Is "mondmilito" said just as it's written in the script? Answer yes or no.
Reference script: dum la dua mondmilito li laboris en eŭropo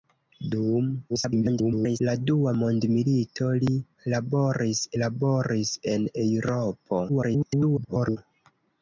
yes